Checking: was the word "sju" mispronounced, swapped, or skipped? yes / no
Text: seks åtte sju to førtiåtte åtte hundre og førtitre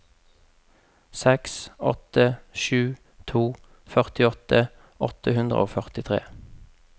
no